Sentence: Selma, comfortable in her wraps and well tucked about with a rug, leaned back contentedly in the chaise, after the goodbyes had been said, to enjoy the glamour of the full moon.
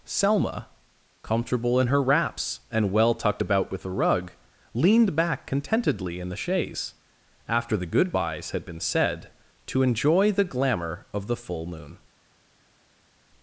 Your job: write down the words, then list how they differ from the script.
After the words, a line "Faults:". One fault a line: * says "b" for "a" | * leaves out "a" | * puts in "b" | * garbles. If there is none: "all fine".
Selma, comfortable in her wraps and well tucked about with a rug, leaned back contentedly in the chaise, after the goodbyes had been said, to enjoy the glamour of the full moon.
Faults:
all fine